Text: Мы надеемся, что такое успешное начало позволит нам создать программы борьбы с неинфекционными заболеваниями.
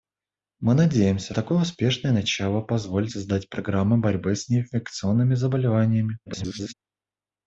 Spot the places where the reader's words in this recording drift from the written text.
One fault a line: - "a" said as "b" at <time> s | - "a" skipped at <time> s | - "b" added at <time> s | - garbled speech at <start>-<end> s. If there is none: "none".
- "что" skipped at 1.4 s
- "нам" skipped at 3.1 s
- garbled speech at 6.3-6.7 s